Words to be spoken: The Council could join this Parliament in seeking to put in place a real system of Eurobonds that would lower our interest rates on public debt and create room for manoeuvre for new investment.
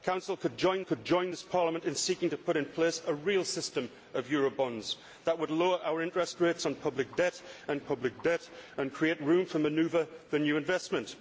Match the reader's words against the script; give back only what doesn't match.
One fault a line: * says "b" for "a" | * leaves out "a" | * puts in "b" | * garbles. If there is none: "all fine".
* puts in "could join"
* puts in "public debt and"